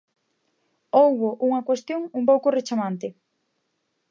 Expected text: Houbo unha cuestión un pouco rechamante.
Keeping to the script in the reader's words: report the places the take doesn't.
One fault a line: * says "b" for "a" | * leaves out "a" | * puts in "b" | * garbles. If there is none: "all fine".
all fine